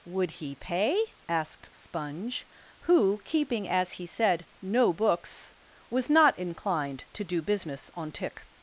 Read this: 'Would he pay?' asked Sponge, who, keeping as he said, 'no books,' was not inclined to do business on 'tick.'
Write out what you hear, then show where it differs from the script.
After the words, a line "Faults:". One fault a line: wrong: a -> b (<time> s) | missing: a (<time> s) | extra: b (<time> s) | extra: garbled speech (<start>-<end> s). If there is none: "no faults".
'Would he pay?' asked Sponge, who, keeping as he said, 'no books,' was not inclined to do business on 'tick.'
Faults:
no faults